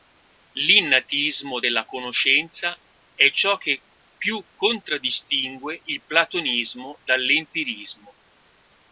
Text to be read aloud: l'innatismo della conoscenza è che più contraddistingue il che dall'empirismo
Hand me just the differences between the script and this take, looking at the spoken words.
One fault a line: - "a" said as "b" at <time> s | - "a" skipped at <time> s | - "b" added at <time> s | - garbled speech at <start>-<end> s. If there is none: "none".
- "ciò" added at 3.3 s
- "che" said as "platonismo" at 6.0 s